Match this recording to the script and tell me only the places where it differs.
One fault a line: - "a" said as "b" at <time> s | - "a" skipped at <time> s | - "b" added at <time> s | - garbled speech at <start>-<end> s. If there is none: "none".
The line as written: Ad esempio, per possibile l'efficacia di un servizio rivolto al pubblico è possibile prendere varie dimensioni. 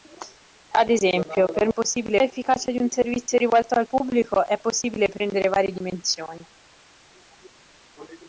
none